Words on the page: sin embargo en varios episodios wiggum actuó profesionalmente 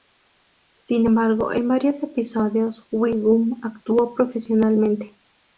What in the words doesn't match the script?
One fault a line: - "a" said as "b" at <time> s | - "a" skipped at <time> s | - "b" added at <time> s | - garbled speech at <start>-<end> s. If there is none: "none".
none